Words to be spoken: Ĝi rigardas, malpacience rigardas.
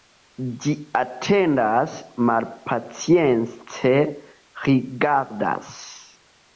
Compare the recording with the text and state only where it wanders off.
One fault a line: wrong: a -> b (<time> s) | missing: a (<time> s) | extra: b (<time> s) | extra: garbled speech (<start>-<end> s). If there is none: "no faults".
wrong: rigardas -> atendas (1.0 s)